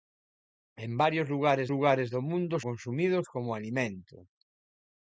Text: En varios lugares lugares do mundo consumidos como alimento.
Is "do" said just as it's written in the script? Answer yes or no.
yes